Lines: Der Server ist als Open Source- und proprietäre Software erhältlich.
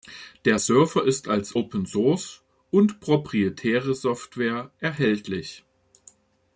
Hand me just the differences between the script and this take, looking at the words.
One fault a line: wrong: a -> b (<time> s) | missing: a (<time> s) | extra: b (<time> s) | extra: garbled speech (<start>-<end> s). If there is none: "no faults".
no faults